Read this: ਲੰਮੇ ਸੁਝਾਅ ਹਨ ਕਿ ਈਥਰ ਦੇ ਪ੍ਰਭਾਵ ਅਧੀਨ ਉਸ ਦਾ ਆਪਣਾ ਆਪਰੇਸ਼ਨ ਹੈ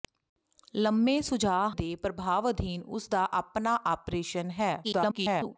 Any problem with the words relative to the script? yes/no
yes